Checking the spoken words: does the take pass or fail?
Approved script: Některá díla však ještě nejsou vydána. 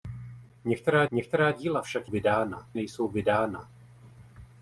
fail